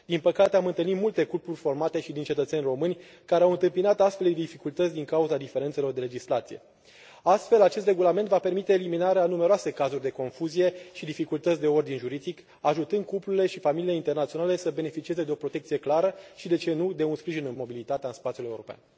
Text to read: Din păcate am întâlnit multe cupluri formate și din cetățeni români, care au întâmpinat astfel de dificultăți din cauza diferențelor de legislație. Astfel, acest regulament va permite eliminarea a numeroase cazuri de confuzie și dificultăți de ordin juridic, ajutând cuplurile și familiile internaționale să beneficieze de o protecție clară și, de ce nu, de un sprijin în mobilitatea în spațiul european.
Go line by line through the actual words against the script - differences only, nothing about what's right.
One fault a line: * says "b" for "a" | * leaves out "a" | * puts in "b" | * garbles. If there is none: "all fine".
all fine